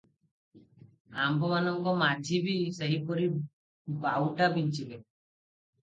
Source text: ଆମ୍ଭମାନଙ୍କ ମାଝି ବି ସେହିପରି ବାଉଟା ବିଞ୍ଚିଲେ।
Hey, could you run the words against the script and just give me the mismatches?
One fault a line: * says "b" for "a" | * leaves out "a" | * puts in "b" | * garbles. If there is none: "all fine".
all fine